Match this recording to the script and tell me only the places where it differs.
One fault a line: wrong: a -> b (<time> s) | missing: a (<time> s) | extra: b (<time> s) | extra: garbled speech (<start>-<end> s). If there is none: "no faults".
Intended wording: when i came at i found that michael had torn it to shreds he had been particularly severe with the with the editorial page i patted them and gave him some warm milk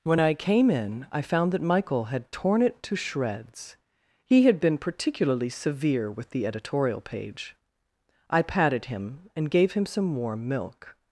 wrong: at -> in (0.7 s)
missing: with the (6.5 s)
wrong: them -> him (8.9 s)